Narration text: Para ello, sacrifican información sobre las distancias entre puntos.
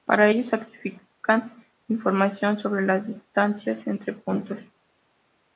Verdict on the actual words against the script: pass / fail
pass